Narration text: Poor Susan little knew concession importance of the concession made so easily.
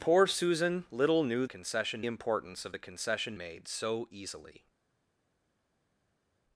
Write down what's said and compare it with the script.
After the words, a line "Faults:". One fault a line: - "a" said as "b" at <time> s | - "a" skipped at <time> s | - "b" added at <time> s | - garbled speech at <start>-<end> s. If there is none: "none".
Poor Susan little knew concession importance of the concession made so easily.
Faults:
none